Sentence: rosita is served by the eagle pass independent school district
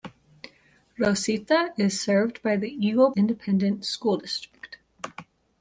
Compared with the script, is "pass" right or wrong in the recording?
wrong